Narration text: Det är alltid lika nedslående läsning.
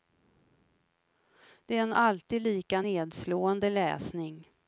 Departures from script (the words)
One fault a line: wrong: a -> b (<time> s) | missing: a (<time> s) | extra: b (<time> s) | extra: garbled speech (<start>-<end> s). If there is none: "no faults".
extra: en (1.8 s)